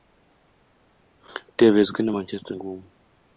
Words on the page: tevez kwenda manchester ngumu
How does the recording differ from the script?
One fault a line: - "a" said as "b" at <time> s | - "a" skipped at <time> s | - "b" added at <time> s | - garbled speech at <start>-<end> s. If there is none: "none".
none